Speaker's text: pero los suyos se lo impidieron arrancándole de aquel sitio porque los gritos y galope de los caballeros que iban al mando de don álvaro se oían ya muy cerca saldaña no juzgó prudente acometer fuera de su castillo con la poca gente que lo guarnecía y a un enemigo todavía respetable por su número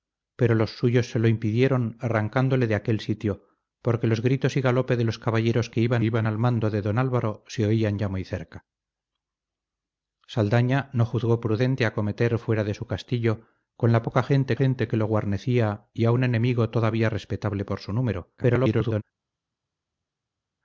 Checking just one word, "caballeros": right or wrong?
right